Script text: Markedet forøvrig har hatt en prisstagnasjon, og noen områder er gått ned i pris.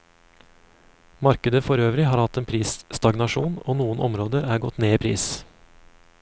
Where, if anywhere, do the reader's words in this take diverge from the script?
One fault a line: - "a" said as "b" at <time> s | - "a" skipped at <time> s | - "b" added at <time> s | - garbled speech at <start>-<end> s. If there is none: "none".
none